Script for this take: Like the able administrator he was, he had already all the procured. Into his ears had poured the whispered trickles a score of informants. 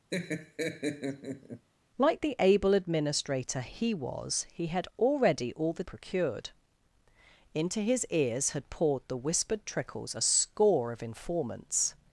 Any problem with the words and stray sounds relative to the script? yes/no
yes